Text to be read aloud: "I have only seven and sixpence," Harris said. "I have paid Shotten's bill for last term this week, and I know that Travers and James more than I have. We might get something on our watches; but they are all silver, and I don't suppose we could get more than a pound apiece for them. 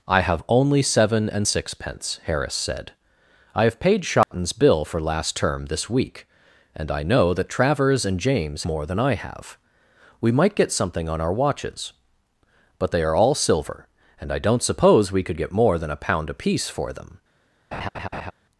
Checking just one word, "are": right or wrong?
right